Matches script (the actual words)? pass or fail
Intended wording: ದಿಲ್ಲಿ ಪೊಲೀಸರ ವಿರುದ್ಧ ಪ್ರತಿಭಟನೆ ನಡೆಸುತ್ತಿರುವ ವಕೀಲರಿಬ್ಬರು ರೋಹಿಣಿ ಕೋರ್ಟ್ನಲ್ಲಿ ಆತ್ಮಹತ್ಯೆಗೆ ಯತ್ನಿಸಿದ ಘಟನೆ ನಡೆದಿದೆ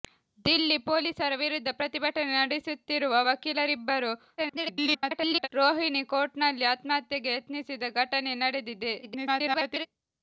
fail